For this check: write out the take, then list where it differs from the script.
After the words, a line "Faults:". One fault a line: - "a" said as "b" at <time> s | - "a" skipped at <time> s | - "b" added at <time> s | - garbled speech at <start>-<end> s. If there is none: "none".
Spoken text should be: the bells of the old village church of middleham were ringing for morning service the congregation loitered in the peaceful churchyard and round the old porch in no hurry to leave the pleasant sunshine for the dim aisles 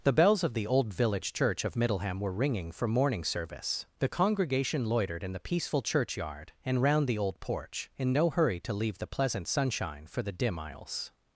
the bells of the old village church of middleham were ringing for morning service the congregation loitered in the peaceful churchyard and round the old porch in no hurry to leave the pleasant sunshine for the dim aisles
Faults:
none